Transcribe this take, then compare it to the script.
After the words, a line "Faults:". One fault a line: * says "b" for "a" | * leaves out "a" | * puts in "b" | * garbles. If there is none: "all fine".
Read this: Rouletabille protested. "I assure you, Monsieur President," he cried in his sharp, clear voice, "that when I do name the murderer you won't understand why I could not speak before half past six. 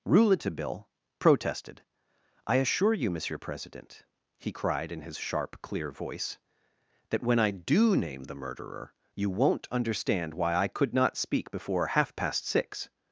Rouletabille protested. "I assure you, Monsieur President," he cried in his sharp, clear voice, "that when I do name the murderer you won't understand why I could not speak before half past six.
Faults:
all fine